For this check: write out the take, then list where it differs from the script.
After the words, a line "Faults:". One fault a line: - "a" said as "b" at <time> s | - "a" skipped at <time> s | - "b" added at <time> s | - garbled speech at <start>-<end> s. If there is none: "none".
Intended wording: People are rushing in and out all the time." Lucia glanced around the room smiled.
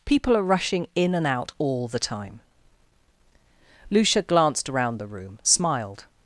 People are rushing in and out all the time." Lucia glanced around the room smiled.
Faults:
none